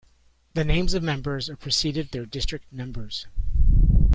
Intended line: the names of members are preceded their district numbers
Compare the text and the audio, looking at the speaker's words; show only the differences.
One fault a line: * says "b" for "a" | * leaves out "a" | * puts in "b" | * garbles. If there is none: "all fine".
all fine